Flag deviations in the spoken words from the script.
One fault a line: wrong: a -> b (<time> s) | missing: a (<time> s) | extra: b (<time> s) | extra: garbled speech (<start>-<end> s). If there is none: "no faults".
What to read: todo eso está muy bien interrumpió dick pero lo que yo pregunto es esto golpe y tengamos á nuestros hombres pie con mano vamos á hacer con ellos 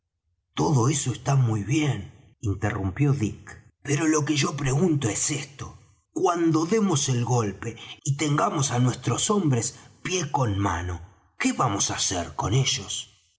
extra: cuando demos el (6.1 s)
extra: qué (11.4 s)